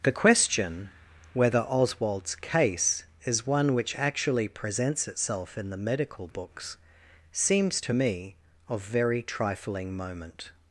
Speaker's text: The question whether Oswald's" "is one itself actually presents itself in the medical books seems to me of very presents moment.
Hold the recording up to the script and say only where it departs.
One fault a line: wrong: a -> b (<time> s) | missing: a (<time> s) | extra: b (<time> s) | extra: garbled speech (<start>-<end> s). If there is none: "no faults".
extra: case (2.3 s)
wrong: itself -> which (3.7 s)
wrong: presents -> trifling (9.2 s)